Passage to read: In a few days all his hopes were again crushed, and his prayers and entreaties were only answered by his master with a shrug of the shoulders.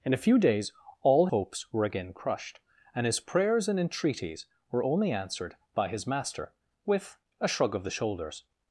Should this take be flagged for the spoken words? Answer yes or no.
yes